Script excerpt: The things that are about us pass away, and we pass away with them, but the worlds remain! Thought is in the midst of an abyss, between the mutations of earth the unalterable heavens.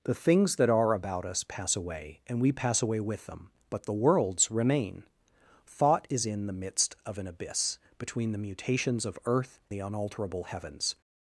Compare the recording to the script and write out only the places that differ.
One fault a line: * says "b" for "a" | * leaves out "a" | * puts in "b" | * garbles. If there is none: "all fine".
all fine